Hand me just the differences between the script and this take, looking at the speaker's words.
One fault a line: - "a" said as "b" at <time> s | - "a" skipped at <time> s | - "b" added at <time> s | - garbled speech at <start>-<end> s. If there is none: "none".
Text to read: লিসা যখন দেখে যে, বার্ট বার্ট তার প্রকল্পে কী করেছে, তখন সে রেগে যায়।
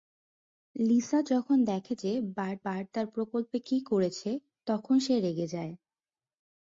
none